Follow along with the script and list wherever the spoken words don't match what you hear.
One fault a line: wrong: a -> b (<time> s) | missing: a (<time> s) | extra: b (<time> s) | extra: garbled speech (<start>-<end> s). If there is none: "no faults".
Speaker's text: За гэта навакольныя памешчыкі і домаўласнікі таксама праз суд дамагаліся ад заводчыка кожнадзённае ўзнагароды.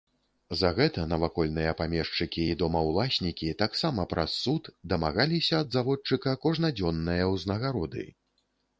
no faults